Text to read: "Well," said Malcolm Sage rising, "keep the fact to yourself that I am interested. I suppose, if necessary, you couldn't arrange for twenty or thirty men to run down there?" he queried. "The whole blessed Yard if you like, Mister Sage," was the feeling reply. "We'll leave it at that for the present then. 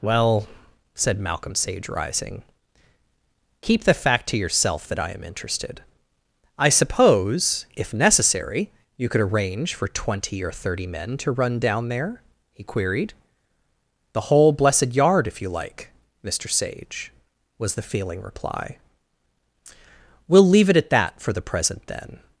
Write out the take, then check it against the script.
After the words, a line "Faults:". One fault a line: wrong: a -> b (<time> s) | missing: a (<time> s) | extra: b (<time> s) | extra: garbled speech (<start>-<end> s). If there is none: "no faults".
"Well," said Malcolm Sage rising, "keep the fact to yourself that I am interested. I suppose, if necessary, you could arrange for twenty or thirty men to run down there?" he queried. "The whole blessed Yard if you like, Mister Sage," was the feeling reply. "We'll leave it at that for the present then.
Faults:
wrong: couldn't -> could (9.1 s)